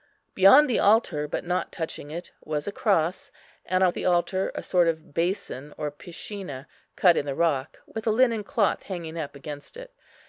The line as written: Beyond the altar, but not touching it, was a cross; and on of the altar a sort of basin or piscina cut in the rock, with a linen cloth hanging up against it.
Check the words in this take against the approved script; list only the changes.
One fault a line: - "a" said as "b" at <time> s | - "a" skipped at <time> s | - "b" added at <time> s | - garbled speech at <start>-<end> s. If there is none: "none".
none